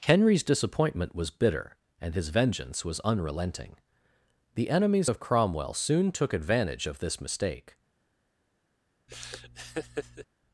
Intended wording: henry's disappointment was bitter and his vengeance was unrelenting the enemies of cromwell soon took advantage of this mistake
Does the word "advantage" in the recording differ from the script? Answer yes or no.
no